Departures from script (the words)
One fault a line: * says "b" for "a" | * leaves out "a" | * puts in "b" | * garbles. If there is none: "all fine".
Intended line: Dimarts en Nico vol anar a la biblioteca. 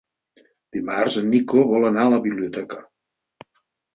all fine